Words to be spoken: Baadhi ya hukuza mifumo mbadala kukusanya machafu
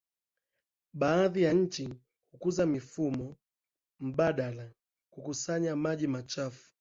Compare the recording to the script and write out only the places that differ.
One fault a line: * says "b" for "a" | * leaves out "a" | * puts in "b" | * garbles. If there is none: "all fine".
* puts in "nchi"
* puts in "maji"